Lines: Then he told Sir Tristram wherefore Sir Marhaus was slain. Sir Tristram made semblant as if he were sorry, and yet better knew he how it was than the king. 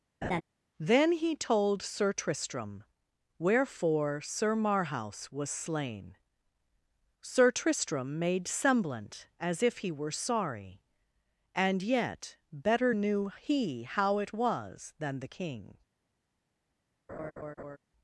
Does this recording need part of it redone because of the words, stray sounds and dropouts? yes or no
yes